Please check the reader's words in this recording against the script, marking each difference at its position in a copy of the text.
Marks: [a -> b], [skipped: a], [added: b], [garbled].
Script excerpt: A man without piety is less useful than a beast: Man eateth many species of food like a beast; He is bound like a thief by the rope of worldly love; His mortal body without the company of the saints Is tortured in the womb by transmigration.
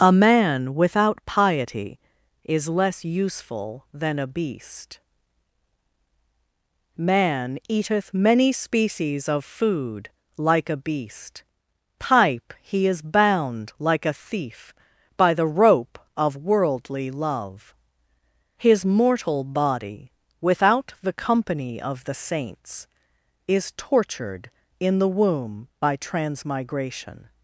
A man without piety is less useful than a beast: Man eateth many species of food like a beast; [added: pipe] He is bound like a thief by the rope of worldly love; His mortal body without the company of the saints Is tortured in the womb by transmigration.